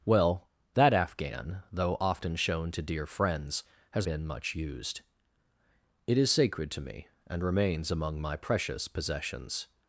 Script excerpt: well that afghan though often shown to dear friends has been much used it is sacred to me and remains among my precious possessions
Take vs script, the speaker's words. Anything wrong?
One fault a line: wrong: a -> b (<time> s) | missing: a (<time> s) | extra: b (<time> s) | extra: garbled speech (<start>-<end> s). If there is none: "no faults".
no faults